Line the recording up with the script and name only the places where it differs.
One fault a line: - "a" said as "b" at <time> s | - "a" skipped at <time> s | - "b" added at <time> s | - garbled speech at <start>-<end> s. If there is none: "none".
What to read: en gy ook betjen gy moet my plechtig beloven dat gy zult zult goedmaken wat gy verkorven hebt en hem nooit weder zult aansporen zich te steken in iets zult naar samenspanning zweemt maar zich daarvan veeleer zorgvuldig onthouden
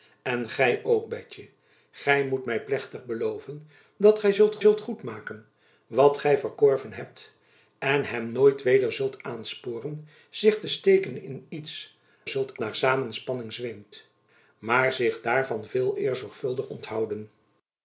none